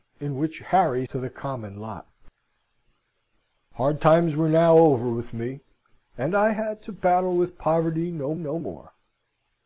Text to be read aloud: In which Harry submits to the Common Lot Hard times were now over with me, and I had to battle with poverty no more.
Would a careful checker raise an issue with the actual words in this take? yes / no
yes